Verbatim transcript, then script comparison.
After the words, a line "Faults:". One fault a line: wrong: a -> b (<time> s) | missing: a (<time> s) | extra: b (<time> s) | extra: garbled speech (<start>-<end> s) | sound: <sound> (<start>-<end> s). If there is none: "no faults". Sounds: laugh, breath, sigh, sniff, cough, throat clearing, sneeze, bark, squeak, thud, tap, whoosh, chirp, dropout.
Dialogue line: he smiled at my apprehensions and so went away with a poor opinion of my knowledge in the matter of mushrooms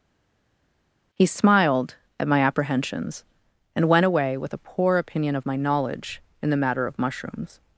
he smiled at my apprehensions and went away with a poor opinion of my knowledge in the matter of mushrooms
Faults:
missing: so (3.9 s)